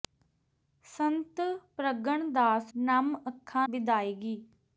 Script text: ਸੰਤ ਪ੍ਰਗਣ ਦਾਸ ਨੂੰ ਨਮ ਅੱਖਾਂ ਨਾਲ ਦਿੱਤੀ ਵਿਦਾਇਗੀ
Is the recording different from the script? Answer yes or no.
yes